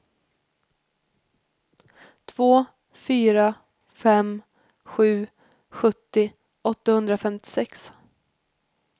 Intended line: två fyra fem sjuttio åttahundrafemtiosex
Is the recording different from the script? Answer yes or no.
yes